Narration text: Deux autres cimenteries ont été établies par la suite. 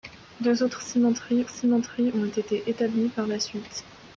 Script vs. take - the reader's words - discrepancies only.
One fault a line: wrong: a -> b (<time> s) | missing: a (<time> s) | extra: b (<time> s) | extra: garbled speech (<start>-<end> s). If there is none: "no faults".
extra: cimenteries (1.5 s)